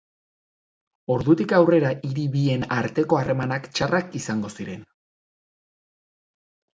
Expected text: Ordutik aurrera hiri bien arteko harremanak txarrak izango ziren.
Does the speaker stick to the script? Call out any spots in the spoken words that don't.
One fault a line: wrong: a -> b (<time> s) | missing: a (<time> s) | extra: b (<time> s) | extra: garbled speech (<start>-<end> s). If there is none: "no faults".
no faults